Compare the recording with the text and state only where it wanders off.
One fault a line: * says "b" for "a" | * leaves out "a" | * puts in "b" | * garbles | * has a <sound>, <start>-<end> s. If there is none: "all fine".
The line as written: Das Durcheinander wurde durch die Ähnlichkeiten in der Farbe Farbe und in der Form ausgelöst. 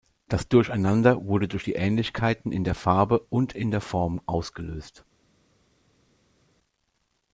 * leaves out "Farbe"